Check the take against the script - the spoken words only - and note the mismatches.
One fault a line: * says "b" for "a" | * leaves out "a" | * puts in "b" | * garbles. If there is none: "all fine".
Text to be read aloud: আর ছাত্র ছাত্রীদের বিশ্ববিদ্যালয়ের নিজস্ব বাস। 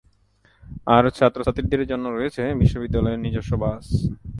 * puts in "জন্য রয়েছে"